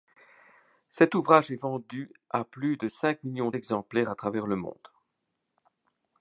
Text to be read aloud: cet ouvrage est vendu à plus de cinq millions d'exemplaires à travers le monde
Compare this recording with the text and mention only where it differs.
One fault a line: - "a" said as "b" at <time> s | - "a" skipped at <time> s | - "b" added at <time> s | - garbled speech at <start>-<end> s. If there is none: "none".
none